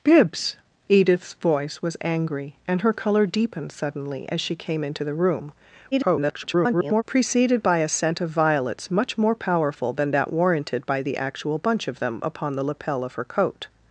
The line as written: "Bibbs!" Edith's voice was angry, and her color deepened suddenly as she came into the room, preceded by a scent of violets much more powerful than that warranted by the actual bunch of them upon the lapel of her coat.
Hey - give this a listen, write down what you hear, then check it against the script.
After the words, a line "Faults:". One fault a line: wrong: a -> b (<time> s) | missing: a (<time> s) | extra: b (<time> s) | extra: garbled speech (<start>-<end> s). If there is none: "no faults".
"Bibbs!" Edith's voice was angry, and her color deepened suddenly as she came into the room, [garbled] preceded by a scent of violets much more powerful than that warranted by the actual bunch of them upon the lapel of her coat.
Faults:
extra: garbled speech (5.9-7.0 s)